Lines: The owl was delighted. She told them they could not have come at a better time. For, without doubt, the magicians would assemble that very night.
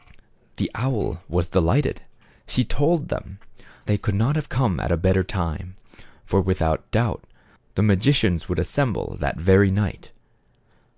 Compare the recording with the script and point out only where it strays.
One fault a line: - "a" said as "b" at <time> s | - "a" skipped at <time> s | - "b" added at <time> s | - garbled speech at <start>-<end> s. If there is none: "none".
none